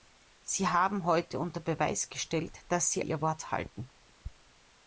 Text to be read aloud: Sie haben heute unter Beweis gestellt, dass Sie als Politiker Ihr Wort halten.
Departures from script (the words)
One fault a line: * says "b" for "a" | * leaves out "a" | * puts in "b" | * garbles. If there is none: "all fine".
* leaves out "als Politiker"